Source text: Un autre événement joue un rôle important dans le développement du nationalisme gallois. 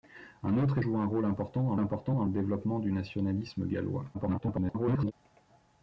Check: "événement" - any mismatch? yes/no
yes